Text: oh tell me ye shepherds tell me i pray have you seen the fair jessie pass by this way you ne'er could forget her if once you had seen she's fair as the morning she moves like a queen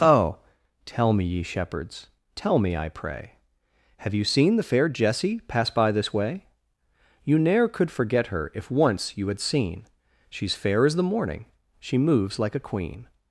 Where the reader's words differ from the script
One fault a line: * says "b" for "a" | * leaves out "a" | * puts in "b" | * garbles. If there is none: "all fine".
all fine